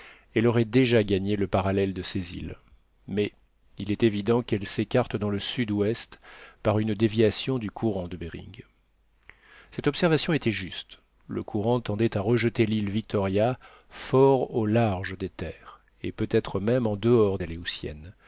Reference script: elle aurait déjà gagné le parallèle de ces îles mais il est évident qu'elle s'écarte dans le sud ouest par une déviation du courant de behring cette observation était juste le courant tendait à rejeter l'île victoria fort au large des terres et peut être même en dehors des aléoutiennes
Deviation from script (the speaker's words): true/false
true